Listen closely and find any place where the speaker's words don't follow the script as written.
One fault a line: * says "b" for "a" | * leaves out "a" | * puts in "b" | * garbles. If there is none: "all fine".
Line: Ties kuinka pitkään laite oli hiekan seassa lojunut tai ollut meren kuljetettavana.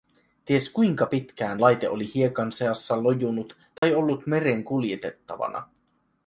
all fine